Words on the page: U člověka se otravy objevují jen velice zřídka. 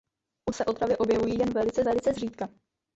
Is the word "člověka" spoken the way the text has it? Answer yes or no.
no